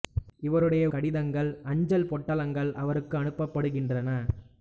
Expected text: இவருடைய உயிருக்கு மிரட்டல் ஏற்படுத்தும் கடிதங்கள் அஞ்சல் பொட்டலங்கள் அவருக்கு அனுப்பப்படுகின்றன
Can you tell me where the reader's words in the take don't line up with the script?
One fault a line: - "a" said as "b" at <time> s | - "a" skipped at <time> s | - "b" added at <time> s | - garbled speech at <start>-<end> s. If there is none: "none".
- "உயிருக்கு மிரட்டல் ஏற்படுத்தும்" skipped at 0.8 s